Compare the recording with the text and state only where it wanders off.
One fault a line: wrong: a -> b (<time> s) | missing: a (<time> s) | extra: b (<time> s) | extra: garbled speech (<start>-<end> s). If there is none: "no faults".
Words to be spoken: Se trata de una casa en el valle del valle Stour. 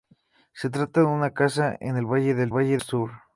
no faults